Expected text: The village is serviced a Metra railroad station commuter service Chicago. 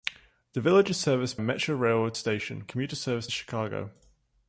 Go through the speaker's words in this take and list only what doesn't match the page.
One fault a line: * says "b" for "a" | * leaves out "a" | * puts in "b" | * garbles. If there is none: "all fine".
all fine